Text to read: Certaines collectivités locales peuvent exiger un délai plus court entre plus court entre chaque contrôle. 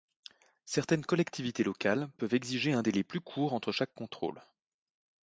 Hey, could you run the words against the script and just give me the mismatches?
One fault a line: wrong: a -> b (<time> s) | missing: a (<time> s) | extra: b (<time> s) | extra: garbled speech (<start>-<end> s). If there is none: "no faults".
missing: plus court entre (3.7 s)